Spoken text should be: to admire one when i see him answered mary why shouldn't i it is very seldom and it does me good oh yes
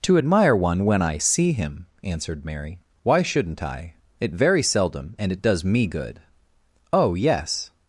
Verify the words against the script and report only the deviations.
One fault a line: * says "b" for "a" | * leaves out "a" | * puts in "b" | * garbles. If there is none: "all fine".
* leaves out "is"